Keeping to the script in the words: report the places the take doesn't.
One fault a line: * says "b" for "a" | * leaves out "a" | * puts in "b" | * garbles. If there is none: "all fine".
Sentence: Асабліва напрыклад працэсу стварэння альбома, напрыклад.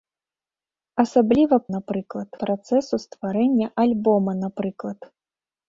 all fine